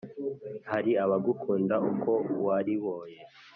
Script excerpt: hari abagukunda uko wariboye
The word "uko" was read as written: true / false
true